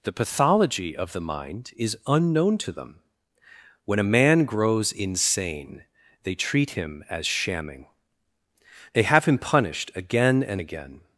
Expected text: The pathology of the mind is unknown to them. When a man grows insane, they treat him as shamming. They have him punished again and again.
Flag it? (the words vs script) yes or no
no